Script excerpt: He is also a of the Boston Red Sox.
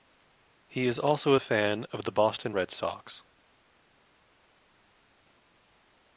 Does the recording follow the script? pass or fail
fail